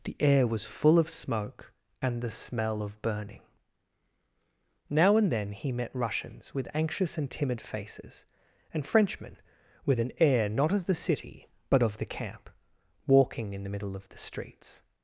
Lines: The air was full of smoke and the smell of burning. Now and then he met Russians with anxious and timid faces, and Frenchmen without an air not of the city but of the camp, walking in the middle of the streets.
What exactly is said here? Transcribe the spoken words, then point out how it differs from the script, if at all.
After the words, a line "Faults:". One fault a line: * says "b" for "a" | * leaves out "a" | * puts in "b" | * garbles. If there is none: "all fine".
The air was full of smoke and the smell of burning. Now and then he met Russians with anxious and timid faces, and Frenchmen with an air not of the city but of the camp, walking in the middle of the streets.
Faults:
* says "with" for "without"